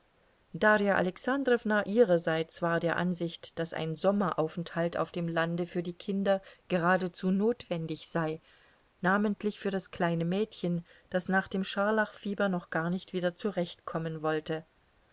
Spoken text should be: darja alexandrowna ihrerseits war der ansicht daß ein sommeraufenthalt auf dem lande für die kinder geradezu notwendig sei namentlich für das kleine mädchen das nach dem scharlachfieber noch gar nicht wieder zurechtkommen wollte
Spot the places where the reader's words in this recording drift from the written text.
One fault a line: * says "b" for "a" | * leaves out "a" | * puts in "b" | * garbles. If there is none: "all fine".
all fine